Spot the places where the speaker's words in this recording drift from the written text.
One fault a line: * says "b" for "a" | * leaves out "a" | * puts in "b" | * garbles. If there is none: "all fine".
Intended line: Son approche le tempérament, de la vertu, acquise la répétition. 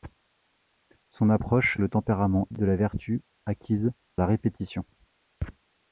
all fine